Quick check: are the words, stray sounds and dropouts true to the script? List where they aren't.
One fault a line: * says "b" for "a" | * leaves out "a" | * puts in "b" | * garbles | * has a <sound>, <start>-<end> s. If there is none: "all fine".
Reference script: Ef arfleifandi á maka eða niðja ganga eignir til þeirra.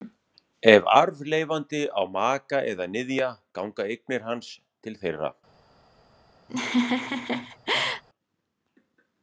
* puts in "hans"
* has a laugh, 6.5-8.0 s